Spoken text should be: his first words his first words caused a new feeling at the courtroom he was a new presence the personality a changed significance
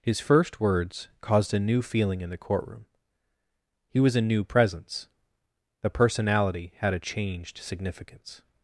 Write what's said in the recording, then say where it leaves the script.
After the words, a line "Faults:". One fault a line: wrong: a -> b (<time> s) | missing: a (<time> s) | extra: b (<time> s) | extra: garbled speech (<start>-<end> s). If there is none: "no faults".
his first words caused a new feeling in the courtroom he was a new presence the personality had a changed significance
Faults:
missing: his first words (1.1 s)
wrong: at -> in (2.2 s)
extra: had (6.8 s)